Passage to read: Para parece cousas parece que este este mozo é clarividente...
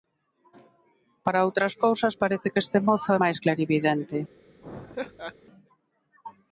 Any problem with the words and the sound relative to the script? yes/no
yes